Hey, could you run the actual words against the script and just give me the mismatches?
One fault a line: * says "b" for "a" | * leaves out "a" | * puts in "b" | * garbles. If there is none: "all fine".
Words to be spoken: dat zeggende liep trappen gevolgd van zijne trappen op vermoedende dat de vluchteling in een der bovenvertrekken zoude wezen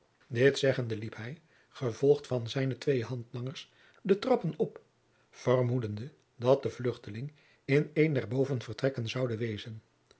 * says "dit" for "dat"
* says "hij" for "trappen"
* puts in "twee handlangers de"